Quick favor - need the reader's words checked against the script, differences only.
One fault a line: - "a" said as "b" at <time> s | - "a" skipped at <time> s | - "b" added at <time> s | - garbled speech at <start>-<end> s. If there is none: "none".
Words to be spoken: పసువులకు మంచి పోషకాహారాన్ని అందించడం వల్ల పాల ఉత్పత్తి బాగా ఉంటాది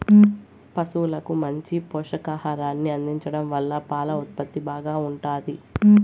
none